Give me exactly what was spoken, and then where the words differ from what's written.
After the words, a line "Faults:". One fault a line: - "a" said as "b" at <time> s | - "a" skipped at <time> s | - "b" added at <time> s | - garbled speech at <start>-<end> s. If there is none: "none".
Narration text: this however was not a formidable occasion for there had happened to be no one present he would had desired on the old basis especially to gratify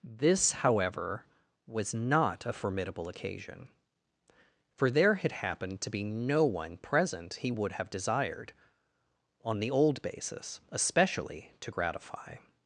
this however was not a formidable occasion for there had happened to be no one present he would have desired on the old basis especially to gratify
Faults:
- "had" said as "have" at 7.7 s